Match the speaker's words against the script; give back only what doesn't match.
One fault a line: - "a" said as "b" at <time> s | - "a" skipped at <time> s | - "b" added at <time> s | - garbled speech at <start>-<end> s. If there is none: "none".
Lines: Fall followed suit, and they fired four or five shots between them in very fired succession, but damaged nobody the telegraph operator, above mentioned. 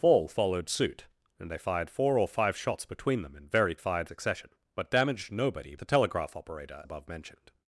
none